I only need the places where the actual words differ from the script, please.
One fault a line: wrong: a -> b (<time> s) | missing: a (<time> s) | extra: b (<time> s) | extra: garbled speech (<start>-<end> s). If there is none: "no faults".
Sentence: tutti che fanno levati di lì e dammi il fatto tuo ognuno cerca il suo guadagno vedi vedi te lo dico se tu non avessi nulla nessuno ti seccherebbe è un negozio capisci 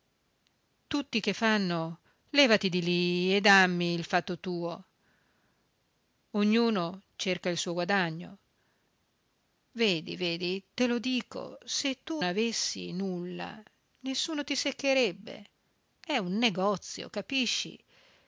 missing: non (12.2 s)